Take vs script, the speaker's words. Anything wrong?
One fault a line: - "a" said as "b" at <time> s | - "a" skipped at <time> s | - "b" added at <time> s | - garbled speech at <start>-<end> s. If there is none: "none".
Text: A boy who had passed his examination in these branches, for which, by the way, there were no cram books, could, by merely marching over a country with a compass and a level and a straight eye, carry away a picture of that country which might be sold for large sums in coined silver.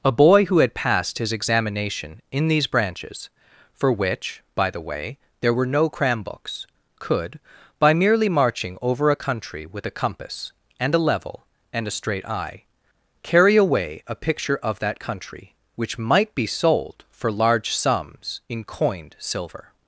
none